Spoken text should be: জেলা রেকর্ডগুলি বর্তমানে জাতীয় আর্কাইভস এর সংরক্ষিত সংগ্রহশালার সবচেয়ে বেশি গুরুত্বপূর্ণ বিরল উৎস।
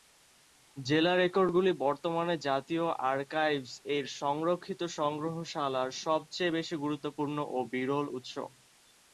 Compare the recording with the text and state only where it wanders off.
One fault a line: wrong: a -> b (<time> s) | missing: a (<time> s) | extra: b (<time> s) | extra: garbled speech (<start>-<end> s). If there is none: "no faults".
extra: ও (7.5 s)